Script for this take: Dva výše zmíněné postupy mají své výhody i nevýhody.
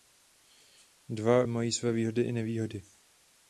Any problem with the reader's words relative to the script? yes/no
yes